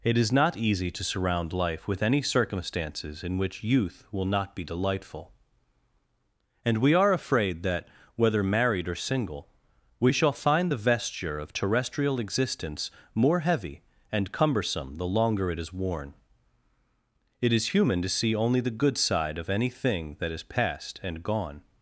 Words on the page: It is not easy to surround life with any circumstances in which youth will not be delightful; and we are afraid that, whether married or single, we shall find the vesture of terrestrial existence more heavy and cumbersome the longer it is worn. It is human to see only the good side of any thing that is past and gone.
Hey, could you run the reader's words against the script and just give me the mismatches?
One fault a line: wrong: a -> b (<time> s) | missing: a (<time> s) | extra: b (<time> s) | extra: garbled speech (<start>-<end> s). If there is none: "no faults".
no faults